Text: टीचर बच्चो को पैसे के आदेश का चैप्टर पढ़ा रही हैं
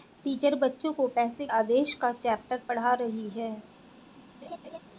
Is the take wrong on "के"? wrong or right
wrong